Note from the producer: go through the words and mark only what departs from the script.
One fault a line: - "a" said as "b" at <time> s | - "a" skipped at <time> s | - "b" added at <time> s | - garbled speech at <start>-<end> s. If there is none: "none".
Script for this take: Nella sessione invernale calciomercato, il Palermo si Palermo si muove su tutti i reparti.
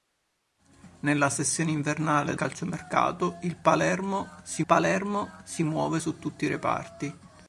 none